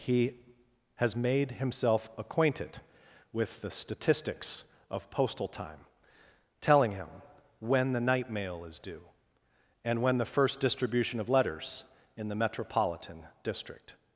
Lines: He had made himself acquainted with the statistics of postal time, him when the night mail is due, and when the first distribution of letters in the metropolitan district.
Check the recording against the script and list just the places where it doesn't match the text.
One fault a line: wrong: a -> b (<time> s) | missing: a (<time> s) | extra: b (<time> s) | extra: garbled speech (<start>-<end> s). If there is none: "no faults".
wrong: had -> has (0.9 s)
extra: telling (6.6 s)